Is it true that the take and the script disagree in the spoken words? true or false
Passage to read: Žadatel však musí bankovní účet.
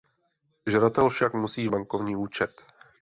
false